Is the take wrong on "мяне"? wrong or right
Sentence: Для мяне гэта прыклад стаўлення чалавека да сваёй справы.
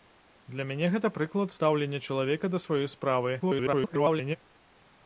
right